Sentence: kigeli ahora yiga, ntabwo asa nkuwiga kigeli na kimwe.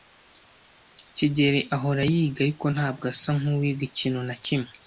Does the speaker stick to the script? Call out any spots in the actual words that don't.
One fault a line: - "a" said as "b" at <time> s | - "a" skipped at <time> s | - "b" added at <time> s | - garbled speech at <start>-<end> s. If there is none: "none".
- "ariko" added at 2.5 s
- "kigeli" said as "ikintu" at 3.9 s